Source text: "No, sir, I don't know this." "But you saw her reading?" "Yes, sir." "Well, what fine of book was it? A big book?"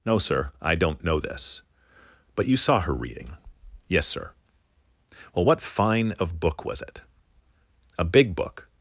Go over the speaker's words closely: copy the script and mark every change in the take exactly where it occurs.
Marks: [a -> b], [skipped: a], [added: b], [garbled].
"No, sir, I don't know this." "But you saw her reading?" "Yes, sir." "Well, what fine of book was it? A big book?"